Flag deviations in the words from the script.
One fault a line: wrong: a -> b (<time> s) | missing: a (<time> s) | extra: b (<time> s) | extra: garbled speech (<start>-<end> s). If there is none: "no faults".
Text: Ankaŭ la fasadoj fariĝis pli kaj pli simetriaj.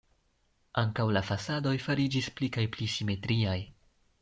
no faults